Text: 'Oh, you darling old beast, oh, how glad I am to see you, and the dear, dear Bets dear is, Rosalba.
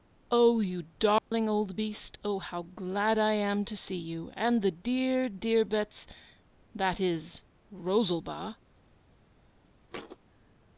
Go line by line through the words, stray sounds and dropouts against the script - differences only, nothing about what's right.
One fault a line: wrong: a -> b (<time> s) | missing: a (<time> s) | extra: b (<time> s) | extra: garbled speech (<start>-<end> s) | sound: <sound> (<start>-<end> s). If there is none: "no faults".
sound: dropout (1.2-1.3 s)
wrong: dear -> that (6.7 s)
sound: thud (9.9-10.2 s)